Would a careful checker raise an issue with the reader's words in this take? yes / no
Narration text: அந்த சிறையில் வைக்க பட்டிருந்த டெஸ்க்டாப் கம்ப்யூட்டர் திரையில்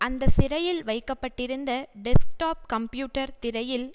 no